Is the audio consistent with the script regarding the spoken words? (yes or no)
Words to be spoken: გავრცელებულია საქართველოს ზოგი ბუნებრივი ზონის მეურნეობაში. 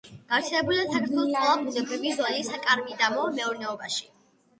no